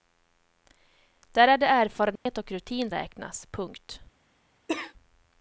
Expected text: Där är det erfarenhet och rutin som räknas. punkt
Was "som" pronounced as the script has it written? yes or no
no